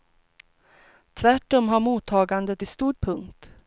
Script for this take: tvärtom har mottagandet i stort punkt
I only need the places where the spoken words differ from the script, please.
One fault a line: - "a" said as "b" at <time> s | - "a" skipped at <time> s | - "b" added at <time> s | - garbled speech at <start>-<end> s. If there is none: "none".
none